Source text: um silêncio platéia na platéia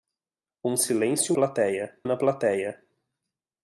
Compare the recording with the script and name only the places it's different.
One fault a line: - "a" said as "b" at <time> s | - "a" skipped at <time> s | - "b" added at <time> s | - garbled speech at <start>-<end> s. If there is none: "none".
none